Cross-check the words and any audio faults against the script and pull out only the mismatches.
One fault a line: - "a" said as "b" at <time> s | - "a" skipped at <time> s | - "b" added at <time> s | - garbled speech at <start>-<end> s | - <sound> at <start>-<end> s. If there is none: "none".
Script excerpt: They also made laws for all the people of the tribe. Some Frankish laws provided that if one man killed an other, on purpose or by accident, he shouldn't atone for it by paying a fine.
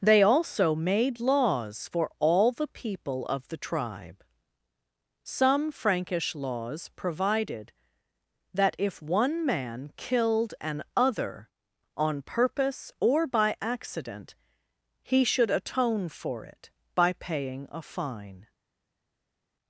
- "shouldn't" said as "should" at 15.2 s